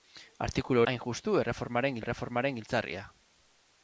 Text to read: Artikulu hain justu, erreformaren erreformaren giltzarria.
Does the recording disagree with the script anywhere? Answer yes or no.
no